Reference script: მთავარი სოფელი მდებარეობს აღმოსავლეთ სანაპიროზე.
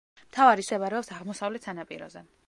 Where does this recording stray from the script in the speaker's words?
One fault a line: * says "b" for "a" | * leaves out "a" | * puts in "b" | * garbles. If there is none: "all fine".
* leaves out "სოფელი"